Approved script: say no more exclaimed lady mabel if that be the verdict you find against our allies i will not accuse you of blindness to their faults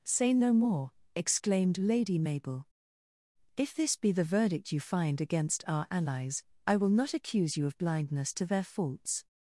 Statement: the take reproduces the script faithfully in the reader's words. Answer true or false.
false